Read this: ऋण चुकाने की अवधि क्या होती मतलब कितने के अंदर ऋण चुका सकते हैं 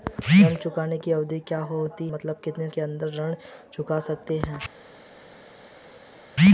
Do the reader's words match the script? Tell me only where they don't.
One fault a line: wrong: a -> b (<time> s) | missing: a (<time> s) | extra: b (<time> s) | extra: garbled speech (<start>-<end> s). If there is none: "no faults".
no faults